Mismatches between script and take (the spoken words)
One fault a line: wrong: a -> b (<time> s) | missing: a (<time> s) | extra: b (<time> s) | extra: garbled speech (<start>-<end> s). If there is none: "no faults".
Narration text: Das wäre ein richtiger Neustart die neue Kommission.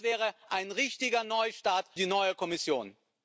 no faults